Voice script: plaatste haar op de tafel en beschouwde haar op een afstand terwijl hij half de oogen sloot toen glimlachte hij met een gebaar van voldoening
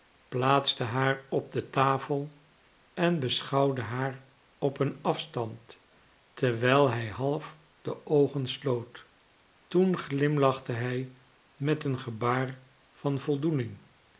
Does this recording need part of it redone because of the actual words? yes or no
no